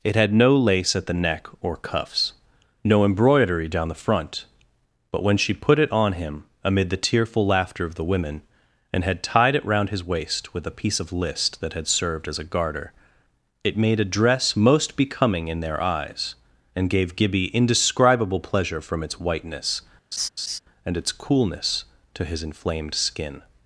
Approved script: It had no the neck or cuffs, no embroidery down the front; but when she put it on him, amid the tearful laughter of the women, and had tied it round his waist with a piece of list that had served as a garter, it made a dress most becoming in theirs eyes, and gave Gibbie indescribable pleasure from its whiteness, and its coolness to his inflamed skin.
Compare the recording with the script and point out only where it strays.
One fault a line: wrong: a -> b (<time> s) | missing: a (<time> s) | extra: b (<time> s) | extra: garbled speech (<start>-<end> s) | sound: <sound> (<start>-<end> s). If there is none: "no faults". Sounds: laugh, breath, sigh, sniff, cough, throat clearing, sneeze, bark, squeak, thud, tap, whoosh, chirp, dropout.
extra: lace at (0.6 s)
wrong: theirs -> their (15.6 s)
sound: laugh (20.1-20.6 s)